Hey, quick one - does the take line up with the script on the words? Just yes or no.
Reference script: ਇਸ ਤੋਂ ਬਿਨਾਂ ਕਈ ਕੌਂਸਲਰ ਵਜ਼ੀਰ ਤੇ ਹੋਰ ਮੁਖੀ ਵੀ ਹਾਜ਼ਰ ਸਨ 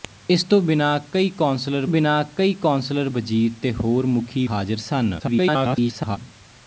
no